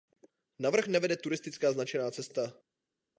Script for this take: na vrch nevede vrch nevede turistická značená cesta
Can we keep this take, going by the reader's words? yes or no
no